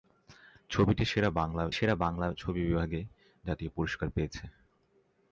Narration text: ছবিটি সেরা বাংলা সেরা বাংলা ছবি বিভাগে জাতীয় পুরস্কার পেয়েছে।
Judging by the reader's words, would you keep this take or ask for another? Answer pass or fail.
pass